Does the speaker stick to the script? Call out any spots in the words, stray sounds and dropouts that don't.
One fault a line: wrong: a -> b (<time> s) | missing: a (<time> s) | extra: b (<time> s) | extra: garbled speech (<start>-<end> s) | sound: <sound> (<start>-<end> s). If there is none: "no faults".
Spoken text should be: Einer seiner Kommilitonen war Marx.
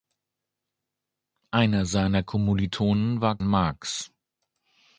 no faults